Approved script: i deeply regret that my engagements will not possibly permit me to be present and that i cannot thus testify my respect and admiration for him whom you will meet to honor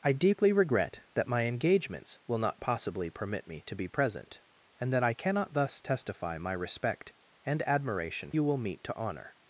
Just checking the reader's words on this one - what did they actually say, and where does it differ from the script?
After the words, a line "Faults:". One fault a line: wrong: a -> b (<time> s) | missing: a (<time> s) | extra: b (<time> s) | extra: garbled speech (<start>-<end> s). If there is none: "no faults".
i deeply regret that my engagements will not possibly permit me to be present and that i cannot thus testify my respect and admiration you will meet to honor
Faults:
missing: for him whom (8.3 s)